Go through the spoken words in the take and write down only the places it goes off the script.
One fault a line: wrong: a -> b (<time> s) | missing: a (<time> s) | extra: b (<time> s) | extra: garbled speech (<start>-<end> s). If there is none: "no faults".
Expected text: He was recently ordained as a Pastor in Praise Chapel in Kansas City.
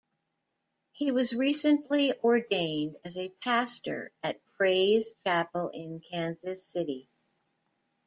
wrong: in -> at (4.2 s)